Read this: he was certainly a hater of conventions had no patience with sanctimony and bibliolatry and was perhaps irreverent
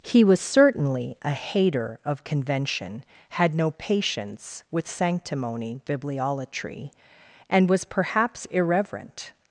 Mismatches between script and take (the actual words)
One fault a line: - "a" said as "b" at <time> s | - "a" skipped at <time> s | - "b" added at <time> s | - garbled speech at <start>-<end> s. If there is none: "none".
- "conventions" said as "convention" at 2.2 s
- "and" skipped at 5.8 s